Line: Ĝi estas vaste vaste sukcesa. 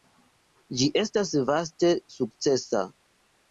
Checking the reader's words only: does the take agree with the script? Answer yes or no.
no